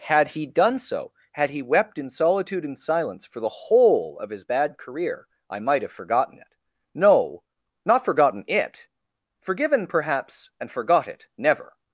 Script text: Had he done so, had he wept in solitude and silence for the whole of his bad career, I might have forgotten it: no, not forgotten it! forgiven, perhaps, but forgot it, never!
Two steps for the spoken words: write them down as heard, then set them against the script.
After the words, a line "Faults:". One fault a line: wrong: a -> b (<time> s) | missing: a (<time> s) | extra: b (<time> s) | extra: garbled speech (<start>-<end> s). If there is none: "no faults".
Had he done so, had he wept in solitude and silence for the whole of his bad career, I might have forgotten it: no, not forgotten it! forgiven, perhaps, and forgot it, never!
Faults:
wrong: but -> and (10.6 s)